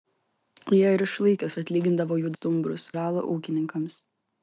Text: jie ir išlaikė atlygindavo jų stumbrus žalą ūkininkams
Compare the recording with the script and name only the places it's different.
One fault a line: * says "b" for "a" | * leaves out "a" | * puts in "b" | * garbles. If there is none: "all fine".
all fine